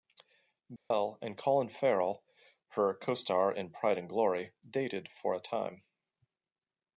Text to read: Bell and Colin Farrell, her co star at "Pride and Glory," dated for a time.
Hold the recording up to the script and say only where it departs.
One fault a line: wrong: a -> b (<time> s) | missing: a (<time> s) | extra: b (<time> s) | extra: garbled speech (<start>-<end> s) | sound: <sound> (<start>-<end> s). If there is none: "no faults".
sound: dropout (0.8-0.9 s)
wrong: at -> in (3.5 s)